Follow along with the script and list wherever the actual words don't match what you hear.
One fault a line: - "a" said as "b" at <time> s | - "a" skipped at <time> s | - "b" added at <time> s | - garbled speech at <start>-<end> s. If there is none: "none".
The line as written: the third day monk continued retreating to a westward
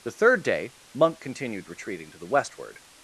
- "a" said as "the" at 2.2 s